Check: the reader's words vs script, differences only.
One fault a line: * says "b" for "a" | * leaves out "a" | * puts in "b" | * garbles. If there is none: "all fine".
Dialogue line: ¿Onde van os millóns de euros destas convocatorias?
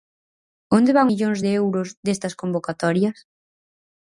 * leaves out "os"